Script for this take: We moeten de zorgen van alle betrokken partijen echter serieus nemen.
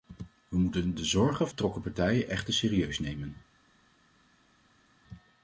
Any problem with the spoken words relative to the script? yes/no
yes